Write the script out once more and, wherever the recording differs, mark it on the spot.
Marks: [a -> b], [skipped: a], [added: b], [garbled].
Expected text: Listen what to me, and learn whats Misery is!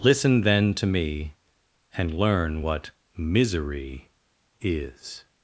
Listen [what -> then] to me, and learn [whats -> what] Misery is!